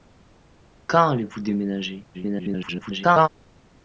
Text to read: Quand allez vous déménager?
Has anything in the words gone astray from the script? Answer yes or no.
yes